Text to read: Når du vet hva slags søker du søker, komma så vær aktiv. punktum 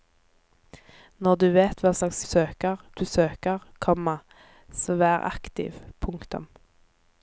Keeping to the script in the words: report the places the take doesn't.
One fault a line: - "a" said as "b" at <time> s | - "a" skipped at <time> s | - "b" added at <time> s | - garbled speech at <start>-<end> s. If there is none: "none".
none